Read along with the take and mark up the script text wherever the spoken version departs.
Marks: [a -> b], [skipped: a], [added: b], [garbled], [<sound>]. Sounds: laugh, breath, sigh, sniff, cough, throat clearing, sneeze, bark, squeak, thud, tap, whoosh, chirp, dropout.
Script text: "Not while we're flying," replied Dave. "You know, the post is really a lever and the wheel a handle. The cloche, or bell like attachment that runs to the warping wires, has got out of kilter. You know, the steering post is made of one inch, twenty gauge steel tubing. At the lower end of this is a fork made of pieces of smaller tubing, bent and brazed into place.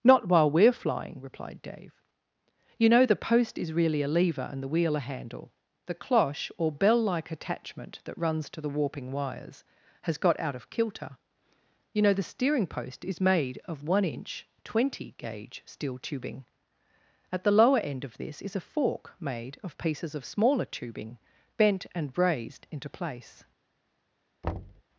"Not while we're flying," replied Dave. "You know, the post is really a lever and the wheel a handle. The cloche, or bell like attachment that runs to the warping wires, has got out of kilter. You know, the steering post is made of one inch, twenty gauge steel tubing. At the lower end of this is a fork made of pieces of smaller tubing, bent and brazed into place. [thud]